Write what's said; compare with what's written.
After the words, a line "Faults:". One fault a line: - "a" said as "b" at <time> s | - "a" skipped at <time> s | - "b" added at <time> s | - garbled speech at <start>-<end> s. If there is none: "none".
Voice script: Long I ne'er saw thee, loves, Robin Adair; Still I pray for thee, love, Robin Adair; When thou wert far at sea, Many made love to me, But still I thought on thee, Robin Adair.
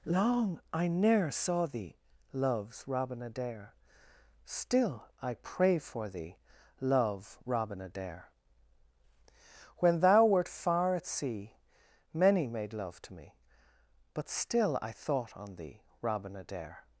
Long I ne'er saw thee, loves, Robin Adair; Still I pray for thee, love, Robin Adair; When thou wert far at sea, Many made love to me, But still I thought on thee, Robin Adair.
Faults:
none